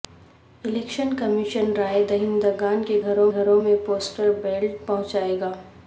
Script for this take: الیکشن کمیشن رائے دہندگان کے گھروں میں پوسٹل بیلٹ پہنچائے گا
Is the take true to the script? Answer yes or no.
no